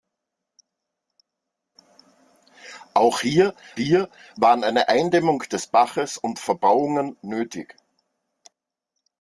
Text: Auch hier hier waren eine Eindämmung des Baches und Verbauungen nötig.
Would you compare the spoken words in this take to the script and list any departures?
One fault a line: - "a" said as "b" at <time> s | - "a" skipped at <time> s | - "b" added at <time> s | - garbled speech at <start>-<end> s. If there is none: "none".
none